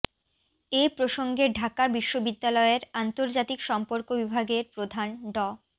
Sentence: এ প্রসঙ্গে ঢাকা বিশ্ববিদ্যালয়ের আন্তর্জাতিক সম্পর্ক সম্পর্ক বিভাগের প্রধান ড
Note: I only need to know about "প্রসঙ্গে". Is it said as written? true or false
true